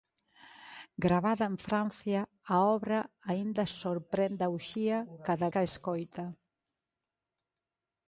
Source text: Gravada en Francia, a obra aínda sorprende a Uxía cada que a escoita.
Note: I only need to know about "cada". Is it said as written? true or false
true